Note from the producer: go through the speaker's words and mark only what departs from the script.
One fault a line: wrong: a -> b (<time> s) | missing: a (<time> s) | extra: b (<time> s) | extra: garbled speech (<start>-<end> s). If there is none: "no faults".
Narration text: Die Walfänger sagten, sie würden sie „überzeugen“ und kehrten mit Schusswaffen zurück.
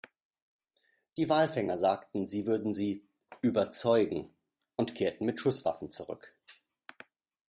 no faults